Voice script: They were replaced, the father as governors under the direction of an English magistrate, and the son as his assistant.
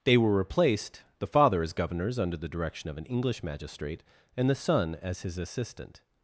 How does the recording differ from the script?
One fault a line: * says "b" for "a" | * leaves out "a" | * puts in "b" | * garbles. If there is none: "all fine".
all fine